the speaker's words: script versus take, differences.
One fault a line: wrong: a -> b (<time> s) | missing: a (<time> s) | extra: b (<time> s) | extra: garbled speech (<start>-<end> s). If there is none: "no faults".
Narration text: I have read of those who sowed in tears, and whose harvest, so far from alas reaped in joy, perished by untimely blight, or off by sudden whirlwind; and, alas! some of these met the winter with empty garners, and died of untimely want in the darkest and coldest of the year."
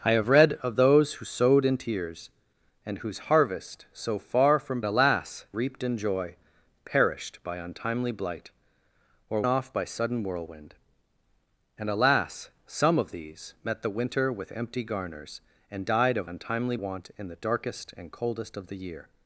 no faults